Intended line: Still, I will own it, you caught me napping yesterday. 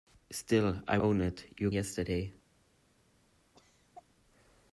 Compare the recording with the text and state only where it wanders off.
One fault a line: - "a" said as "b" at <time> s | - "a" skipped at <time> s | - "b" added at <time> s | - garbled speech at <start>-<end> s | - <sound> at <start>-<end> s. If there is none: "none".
- "will" skipped at 1.0 s
- "caught me napping" skipped at 1.7 s
- cough at 3.5-4.0 s